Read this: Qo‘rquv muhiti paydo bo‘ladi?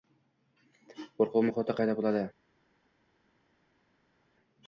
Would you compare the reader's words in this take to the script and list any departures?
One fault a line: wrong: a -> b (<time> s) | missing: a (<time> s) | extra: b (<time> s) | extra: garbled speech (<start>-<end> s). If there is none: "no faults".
no faults